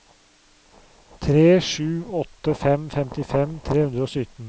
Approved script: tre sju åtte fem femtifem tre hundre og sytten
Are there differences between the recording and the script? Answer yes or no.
no